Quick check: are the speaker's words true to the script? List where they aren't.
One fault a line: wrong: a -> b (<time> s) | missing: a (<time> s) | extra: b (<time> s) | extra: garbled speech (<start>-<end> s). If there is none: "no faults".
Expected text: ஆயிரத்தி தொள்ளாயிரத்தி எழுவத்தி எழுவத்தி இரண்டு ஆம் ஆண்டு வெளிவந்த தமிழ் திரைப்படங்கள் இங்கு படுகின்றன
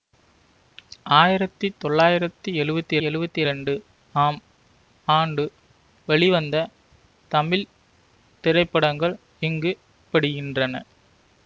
no faults